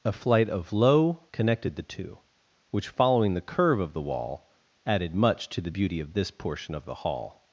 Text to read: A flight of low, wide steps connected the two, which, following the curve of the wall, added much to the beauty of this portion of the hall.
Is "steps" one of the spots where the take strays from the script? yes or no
yes